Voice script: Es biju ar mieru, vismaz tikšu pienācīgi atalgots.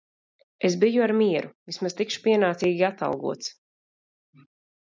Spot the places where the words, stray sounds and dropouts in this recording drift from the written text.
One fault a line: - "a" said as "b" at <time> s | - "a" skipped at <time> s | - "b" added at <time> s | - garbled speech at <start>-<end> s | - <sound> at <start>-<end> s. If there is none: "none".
none